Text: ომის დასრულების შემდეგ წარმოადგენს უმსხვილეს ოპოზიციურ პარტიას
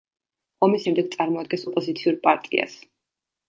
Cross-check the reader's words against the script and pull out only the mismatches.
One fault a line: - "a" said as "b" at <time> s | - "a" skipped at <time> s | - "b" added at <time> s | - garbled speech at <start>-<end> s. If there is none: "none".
- "დასრულების" skipped at 0.8 s
- "უმსხვილეს" skipped at 1.6 s